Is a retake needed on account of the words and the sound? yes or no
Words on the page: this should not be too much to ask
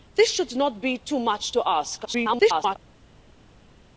yes